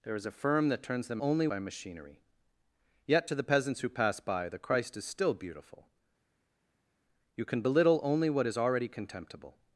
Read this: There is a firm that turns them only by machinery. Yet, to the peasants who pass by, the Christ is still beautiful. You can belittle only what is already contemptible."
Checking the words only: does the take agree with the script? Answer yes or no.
yes